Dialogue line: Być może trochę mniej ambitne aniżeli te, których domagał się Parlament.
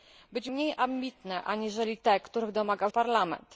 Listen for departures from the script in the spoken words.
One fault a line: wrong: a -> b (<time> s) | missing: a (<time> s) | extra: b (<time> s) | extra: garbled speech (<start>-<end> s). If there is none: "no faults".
missing: może trochę (0.5 s)
missing: się (2.9 s)